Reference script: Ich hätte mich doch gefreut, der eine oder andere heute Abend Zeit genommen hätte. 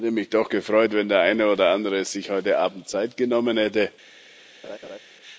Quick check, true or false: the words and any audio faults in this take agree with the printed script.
false